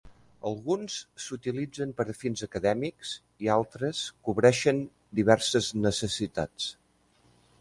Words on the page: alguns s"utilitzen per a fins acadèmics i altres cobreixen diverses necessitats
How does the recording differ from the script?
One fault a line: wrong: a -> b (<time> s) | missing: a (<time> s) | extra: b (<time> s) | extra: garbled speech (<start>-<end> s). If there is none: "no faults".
no faults